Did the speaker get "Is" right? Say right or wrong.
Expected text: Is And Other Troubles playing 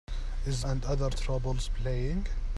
right